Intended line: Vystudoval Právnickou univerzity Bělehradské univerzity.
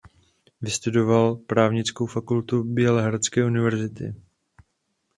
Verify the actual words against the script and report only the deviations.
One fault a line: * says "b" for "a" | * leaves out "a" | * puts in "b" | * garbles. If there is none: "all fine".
* says "fakultu" for "univerzity"